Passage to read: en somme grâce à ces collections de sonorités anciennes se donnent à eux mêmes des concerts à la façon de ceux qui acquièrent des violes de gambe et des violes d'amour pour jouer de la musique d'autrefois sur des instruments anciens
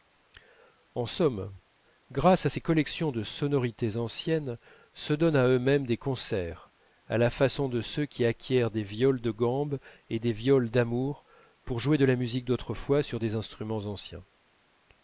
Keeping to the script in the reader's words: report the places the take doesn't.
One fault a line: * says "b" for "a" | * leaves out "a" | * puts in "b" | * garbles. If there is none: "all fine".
all fine